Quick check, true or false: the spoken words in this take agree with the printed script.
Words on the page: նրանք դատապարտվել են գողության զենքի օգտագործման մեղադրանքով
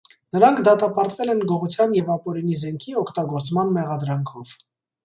false